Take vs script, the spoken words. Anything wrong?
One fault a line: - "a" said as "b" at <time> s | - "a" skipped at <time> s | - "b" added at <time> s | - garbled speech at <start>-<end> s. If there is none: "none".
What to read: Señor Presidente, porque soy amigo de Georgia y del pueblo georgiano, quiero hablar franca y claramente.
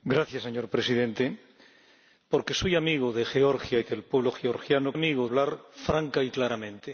- "quiero" said as "amigo" at 4.9 s